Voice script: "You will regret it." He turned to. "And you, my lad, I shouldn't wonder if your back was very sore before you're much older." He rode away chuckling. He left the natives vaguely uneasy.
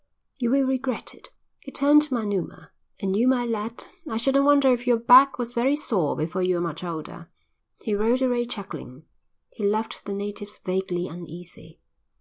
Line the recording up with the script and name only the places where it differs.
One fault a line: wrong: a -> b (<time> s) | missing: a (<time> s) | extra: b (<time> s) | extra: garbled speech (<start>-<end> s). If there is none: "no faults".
extra: Manuma (2.1 s)